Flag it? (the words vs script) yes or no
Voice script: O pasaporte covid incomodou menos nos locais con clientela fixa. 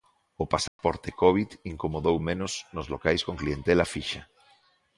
no